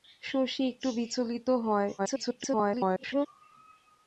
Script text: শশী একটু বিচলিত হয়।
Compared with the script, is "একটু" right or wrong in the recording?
right